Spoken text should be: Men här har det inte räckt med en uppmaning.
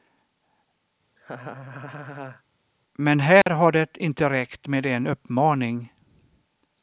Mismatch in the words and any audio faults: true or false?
true